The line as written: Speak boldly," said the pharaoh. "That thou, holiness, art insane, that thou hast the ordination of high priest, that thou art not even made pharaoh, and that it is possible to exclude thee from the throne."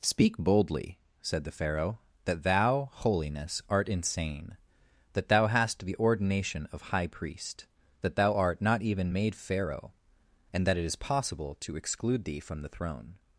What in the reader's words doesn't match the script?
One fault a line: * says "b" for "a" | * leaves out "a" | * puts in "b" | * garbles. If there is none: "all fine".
all fine